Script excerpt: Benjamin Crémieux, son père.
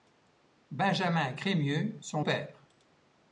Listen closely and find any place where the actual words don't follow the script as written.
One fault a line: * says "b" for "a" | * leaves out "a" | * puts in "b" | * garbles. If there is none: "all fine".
all fine